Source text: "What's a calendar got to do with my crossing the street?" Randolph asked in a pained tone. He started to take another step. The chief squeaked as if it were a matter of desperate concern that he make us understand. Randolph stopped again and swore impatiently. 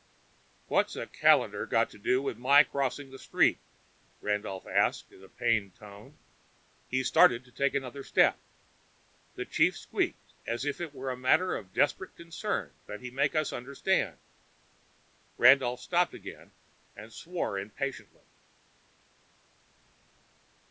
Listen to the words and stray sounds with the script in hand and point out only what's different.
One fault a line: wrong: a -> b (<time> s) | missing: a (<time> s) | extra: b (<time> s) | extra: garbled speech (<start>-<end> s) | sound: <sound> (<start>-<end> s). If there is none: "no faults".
no faults